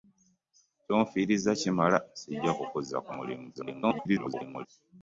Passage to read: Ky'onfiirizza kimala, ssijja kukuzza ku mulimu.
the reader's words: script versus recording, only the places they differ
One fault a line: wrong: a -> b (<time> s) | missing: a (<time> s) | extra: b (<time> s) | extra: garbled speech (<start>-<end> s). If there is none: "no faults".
extra: garbled speech (3.5-4.7 s)